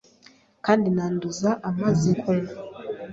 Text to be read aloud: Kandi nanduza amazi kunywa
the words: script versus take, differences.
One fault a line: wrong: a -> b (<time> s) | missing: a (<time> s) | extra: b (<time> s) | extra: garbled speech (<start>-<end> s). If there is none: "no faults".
no faults